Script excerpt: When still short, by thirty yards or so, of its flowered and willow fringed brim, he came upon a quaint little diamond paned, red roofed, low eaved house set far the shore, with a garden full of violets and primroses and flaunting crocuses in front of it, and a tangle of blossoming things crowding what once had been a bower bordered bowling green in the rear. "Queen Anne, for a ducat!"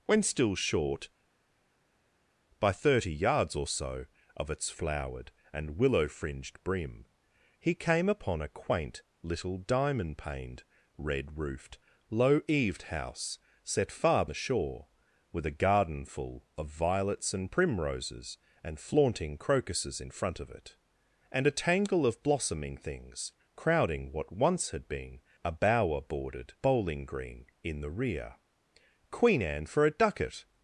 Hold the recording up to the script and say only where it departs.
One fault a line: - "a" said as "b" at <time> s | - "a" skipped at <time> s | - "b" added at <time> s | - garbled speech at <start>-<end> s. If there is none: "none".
none